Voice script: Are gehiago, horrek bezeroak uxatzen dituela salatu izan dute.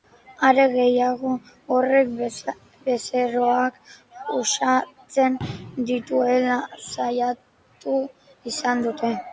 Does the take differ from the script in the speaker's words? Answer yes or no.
no